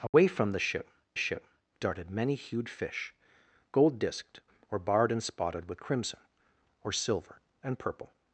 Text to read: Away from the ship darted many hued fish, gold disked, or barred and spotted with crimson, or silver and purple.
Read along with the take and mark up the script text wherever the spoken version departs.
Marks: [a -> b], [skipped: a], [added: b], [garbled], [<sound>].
Away [dropout] from the ship [added: ship] darted many hued fish, gold disked, or barred and spotted with crimson, or silver and purple.